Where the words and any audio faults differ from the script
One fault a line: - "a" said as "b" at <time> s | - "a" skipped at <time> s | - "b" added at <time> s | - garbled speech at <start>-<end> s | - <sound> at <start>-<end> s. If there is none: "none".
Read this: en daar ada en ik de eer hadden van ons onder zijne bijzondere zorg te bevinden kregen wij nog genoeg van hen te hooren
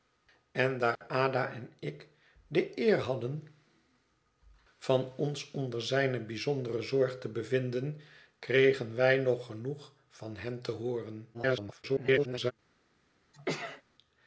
- dropout at 1.0-1.0 s
- garbled speech at 11.3-12.5 s
- sneeze at 13.3-13.8 s